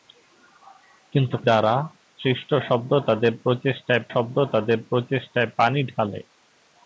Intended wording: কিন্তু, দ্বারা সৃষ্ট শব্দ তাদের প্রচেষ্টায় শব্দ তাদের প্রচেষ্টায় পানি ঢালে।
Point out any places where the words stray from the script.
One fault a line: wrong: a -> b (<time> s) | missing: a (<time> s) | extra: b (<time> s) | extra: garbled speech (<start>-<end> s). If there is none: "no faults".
no faults